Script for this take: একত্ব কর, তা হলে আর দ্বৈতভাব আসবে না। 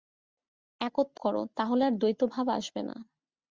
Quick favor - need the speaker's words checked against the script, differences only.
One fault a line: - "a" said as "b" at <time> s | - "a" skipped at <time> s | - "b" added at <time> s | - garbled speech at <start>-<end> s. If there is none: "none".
none